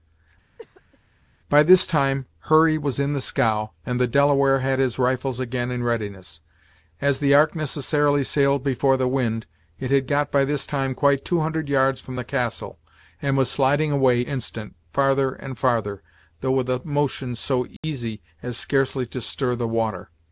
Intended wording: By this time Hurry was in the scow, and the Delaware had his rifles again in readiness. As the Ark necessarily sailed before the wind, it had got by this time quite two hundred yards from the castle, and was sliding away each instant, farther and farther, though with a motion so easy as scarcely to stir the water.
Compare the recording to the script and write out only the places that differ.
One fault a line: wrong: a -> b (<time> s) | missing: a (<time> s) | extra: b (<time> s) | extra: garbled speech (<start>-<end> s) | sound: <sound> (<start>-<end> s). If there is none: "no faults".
sound: cough (0.6-1.0 s)
missing: each (14.2 s)
sound: dropout (17.8-17.8 s)